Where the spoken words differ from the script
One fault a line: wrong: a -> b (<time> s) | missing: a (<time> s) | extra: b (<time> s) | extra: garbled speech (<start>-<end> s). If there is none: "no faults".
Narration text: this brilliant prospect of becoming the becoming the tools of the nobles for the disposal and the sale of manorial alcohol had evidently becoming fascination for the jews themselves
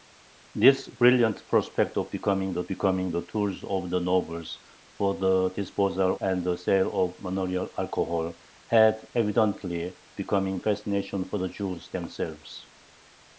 no faults